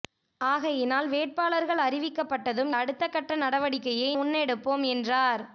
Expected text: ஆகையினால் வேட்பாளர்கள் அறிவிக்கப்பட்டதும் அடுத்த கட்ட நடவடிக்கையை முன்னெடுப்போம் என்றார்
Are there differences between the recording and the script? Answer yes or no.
no